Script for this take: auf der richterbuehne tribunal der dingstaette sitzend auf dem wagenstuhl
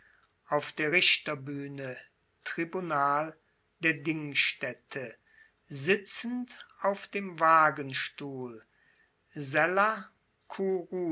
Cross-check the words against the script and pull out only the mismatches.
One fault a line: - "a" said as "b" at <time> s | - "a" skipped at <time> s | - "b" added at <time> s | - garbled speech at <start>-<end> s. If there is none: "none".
none